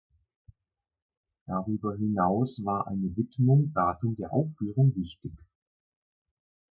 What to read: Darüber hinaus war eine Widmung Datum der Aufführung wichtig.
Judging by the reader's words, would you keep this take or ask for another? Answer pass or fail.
pass